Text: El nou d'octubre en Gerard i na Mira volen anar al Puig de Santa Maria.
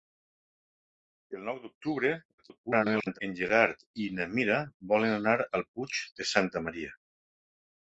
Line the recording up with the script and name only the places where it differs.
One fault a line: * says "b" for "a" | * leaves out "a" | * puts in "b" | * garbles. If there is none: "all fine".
* garbles